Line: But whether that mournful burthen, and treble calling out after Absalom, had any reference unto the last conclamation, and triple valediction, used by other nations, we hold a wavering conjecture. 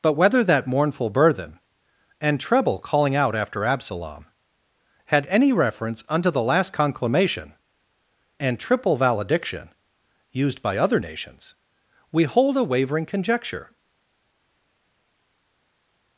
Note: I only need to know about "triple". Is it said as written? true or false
true